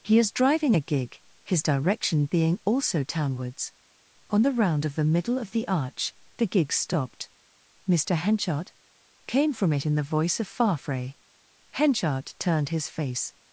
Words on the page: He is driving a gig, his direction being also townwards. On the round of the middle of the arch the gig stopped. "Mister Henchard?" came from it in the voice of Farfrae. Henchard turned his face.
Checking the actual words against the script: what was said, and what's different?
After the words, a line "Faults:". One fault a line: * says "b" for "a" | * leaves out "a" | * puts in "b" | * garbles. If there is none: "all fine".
He is driving a gig, his direction being also townwards. On the round of the middle of the arch the gig stopped. "Mister Henchard?" came from it in the voice of Farfrae. Henchard turned his face.
Faults:
all fine